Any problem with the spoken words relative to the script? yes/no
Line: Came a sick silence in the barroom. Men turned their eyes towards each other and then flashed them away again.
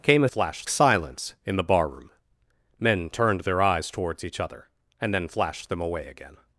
yes